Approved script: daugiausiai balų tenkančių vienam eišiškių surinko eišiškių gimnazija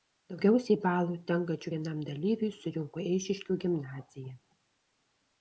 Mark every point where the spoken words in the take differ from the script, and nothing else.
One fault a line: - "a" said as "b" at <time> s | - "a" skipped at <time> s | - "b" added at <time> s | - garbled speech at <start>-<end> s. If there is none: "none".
- "eišiškių" said as "dalyviui" at 2.1 s